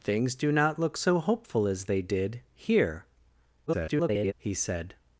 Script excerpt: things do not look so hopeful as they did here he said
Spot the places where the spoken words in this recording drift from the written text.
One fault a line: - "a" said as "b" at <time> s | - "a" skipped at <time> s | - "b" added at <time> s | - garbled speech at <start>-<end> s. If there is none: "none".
- garbled speech at 3.7-4.3 s